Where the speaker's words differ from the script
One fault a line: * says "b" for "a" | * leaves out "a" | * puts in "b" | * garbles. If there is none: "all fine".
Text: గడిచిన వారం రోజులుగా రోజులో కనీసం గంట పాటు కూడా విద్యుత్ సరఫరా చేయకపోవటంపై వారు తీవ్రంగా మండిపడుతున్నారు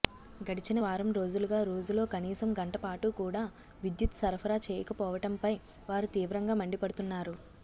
all fine